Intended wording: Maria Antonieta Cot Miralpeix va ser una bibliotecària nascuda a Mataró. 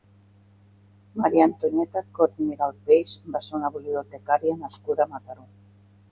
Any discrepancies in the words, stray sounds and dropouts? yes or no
no